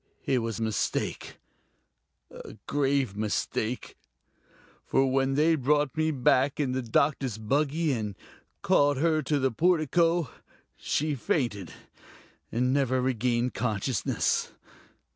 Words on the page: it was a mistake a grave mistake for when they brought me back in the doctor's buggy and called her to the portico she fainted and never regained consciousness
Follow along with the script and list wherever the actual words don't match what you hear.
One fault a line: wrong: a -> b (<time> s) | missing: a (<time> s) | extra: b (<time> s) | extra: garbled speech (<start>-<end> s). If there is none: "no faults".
no faults